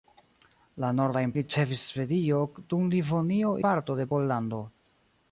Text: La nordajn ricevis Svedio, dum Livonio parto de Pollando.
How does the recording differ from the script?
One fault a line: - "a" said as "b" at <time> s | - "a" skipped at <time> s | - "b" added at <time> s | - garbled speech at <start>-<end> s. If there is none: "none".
none